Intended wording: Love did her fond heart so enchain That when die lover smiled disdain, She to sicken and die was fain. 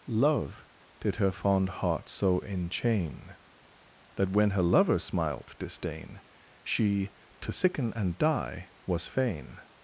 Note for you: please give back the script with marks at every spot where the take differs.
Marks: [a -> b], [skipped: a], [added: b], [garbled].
Love did her fond heart so enchain That when [die -> her] lover smiled disdain, She to sicken and die was fain.